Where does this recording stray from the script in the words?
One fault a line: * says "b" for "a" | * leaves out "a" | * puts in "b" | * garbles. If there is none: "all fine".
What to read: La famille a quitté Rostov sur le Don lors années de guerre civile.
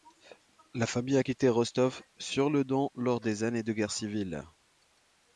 * puts in "des"